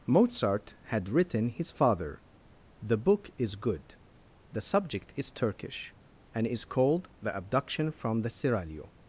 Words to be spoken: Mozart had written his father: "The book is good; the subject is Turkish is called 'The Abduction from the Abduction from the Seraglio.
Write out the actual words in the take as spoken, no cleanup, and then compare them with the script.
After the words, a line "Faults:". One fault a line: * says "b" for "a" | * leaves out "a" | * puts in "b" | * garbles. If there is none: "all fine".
Mozart had written his father: "The book is good; the subject is Turkish and is called 'The Abduction from the Seraglio.
Faults:
* puts in "and"
* leaves out "Abduction from the"